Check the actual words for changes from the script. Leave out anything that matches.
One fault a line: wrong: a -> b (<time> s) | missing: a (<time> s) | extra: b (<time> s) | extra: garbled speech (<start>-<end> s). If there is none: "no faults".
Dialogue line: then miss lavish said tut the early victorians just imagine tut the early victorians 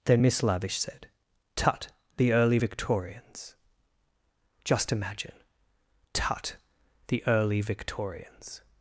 no faults